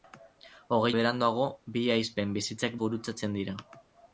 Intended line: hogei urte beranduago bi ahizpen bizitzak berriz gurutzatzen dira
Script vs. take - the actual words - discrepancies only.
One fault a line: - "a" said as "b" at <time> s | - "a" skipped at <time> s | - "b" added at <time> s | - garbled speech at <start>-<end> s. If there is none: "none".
- "urte" skipped at 0.9 s
- "berriz" skipped at 2.8 s